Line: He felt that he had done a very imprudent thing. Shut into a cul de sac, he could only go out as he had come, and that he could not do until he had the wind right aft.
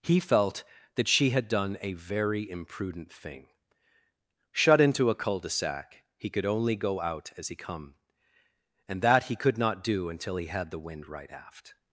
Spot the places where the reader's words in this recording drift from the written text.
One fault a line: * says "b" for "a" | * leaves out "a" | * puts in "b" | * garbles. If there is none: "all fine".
* says "she" for "he"
* leaves out "had"